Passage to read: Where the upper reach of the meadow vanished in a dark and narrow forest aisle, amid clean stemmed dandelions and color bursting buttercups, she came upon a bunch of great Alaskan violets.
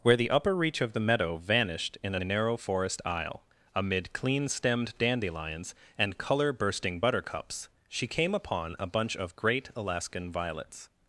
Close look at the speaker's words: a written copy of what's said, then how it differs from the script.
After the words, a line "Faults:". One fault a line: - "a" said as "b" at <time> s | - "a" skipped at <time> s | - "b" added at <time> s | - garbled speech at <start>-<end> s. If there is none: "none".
Where the upper reach of the meadow vanished in a narrow forest aisle, amid clean stemmed dandelions and color bursting buttercups, she came upon a bunch of great Alaskan violets.
Faults:
- "dark and" skipped at 2.2 s